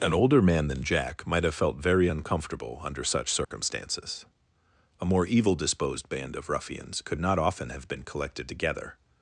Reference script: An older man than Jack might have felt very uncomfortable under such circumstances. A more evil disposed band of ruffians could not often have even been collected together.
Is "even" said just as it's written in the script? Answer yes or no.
no